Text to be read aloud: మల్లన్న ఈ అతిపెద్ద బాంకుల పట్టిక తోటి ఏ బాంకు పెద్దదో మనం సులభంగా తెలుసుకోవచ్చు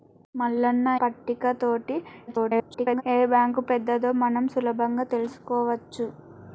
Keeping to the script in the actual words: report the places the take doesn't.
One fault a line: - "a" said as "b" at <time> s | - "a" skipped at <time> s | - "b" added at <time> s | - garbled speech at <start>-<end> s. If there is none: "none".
- "ఈ అతిపెద్ద బాంకుల" skipped at 0.9 s
- garbled speech at 2.3-3.0 s